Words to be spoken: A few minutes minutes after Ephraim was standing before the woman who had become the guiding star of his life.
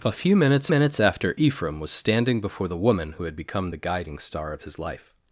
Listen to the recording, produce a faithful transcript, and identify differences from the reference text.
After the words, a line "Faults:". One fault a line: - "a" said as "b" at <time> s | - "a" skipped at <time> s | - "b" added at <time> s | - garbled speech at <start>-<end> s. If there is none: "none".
A few minutes minutes after Ephraim was standing before the woman who had become the guiding star of his life.
Faults:
none